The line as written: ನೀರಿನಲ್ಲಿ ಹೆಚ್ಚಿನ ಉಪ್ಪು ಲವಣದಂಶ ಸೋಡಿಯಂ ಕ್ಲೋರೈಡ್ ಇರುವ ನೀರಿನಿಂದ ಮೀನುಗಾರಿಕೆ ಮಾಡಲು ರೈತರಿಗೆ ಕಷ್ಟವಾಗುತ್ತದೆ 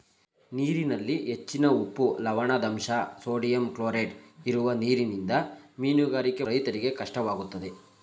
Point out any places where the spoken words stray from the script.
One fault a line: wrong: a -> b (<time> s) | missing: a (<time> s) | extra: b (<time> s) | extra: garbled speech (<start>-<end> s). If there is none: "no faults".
missing: ಮಾಡಲು (6.4 s)